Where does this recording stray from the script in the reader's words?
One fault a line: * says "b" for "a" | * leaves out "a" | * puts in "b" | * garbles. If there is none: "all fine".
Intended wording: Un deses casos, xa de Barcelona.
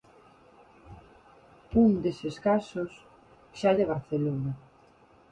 all fine